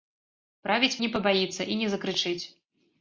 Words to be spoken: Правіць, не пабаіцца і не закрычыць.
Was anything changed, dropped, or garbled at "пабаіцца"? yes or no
no